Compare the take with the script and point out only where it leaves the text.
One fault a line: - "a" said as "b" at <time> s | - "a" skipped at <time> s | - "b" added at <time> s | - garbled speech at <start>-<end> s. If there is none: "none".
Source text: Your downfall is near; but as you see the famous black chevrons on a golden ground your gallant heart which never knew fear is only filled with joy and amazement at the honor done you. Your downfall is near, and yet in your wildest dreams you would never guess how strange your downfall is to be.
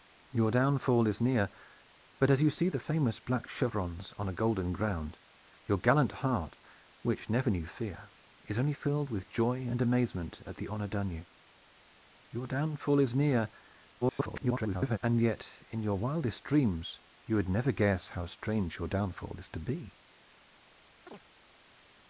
- garbled speech at 14.0-15.0 s